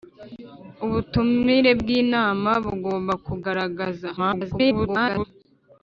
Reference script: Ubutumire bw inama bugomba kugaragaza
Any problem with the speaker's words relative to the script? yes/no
yes